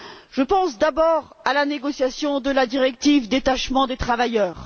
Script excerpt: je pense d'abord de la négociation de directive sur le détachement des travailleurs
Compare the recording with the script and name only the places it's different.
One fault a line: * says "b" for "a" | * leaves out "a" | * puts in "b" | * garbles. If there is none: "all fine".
* says "à" for "de"
* puts in "la"